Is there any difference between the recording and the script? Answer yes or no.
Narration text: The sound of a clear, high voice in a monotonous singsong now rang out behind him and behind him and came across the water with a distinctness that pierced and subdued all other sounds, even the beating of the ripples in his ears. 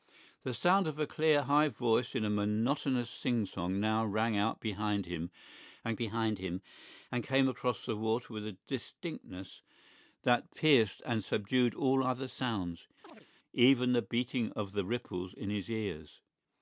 no